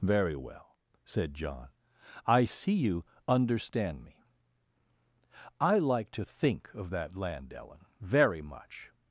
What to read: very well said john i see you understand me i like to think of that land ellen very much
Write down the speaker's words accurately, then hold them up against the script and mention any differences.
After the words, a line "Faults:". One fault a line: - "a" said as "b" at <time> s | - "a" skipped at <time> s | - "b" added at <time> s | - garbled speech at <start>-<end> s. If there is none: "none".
very well said john i see you understand me i like to think of that land ellen very much
Faults:
none